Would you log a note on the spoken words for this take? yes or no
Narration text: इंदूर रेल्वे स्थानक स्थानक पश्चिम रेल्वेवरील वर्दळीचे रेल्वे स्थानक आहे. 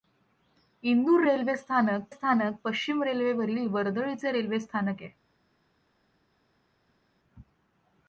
no